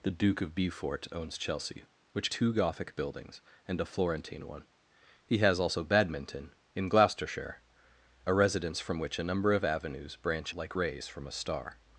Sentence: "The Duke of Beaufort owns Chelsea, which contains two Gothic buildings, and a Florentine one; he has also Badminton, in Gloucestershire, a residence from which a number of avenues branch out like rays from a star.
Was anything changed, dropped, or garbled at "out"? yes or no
yes